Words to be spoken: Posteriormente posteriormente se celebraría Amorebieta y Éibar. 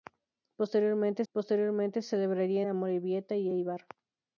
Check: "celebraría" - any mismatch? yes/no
no